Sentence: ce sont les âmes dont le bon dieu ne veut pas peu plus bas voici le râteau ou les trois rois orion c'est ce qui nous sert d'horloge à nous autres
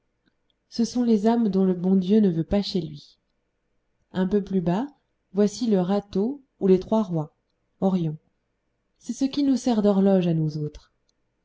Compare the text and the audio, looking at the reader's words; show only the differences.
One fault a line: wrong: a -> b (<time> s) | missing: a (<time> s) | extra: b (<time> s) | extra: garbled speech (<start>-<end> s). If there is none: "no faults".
extra: chez lui un (2.6 s)